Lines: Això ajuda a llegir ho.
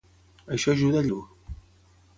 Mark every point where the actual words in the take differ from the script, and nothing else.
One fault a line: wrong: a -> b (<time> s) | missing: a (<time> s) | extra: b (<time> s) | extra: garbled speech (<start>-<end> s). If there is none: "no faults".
missing: llegir (1.1 s)